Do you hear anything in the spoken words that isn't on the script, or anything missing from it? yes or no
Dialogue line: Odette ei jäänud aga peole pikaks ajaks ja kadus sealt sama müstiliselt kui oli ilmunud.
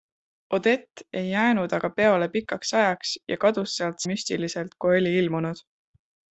yes